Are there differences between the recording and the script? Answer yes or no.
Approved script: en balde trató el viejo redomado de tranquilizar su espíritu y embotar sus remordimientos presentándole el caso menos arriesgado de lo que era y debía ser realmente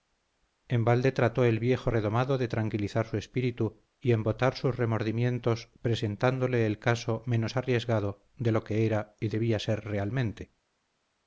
no